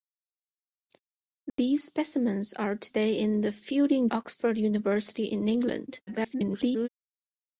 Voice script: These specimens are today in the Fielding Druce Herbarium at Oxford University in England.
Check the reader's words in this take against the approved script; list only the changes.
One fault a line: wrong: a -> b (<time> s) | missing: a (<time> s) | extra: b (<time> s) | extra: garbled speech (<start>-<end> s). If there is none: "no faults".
missing: Druce Herbarium at (4.1 s)
extra: garbled speech (6.1-6.9 s)